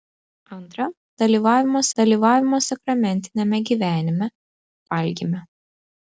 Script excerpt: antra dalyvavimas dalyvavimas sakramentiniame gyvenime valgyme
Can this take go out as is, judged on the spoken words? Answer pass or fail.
pass